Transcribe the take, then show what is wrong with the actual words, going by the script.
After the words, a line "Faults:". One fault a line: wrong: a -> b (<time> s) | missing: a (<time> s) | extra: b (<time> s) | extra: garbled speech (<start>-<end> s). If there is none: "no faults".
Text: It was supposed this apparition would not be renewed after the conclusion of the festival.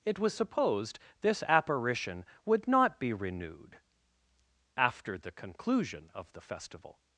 It was supposed this apparition would not be renewed after the conclusion of the festival.
Faults:
no faults